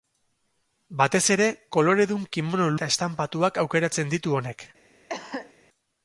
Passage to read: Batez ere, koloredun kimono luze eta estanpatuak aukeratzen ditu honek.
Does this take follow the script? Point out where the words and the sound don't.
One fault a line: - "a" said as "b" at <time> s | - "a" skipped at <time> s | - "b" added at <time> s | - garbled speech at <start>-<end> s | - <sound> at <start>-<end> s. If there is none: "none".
- "luze" skipped at 2.7 s
- cough at 5.1-5.5 s